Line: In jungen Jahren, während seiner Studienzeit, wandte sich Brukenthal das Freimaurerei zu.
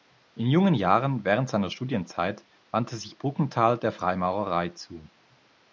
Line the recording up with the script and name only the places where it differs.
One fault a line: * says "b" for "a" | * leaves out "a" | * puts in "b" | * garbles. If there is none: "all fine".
* says "der" for "das"